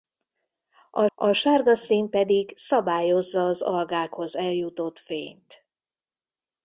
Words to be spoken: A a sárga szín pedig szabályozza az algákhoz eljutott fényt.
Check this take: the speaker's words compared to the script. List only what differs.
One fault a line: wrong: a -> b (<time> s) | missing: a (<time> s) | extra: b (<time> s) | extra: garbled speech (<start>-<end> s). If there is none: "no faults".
no faults